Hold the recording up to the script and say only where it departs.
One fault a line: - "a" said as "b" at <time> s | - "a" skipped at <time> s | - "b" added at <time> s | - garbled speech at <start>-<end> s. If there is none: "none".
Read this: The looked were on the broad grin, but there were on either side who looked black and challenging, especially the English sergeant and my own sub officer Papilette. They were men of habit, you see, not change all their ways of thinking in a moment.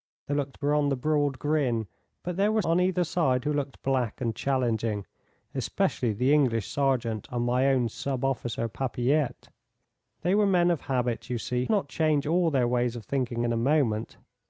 none